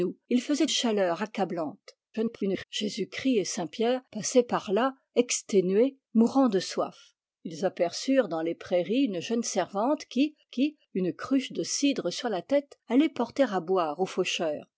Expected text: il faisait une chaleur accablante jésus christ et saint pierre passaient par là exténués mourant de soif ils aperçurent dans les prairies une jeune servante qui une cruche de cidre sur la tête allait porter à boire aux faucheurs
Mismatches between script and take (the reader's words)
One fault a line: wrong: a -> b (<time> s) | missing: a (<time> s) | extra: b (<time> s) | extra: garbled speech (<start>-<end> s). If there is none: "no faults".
missing: une (0.7 s)
extra: garbled speech (2.1-2.6 s)
extra: qui (10.5 s)